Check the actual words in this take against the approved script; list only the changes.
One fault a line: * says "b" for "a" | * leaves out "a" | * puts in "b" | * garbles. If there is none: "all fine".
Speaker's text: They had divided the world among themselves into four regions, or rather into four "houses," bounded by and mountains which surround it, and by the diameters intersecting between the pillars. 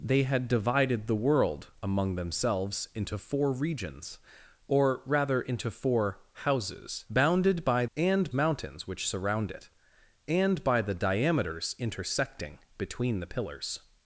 all fine